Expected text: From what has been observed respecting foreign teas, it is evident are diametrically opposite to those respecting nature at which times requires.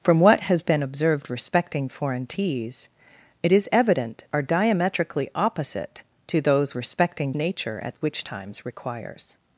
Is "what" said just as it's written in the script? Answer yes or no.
yes